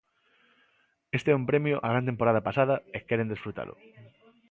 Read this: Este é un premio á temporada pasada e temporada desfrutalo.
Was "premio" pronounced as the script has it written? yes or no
yes